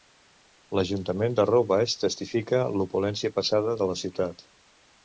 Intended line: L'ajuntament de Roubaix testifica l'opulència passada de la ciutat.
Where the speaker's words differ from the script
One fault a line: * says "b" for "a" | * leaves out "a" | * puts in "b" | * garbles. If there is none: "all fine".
all fine